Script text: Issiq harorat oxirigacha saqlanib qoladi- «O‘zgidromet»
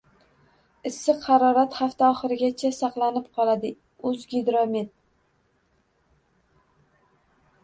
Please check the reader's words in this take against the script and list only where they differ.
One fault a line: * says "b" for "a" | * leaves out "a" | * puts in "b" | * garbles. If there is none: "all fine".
* puts in "hafta"